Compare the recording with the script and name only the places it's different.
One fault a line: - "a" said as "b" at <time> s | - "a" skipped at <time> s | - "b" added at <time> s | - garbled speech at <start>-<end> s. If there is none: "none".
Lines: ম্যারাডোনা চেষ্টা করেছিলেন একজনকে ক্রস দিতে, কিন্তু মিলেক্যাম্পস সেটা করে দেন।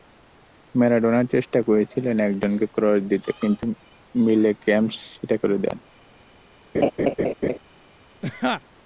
none